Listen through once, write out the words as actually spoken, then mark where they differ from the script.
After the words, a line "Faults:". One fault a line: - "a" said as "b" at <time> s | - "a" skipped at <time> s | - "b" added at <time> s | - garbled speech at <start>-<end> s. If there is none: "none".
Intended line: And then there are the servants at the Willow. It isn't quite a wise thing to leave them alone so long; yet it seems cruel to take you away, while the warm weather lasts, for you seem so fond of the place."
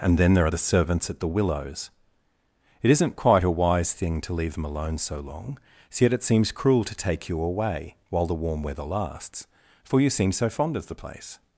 And then there are the servants at the Willows. It isn't quite a wise thing to leave them alone so long; yet it seems cruel to take you away, while the warm weather lasts, for you seem so fond of the place."
Faults:
- "Willow" said as "Willows" at 1.3 s